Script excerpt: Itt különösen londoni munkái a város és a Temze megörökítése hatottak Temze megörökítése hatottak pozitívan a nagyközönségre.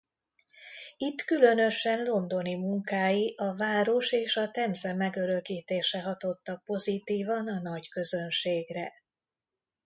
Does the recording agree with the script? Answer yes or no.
no